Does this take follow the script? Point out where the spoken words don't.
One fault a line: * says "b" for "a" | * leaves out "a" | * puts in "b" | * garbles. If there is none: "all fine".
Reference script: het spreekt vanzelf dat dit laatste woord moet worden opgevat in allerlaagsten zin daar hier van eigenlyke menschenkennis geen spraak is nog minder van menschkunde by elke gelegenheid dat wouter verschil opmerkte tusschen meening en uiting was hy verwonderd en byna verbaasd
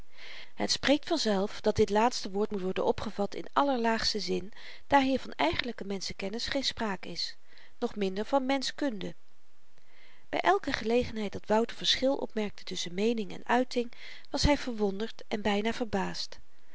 all fine